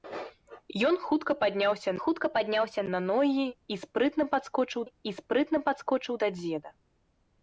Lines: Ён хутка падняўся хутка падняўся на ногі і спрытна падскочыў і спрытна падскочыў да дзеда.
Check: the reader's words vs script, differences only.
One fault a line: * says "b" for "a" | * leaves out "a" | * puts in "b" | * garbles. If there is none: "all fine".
all fine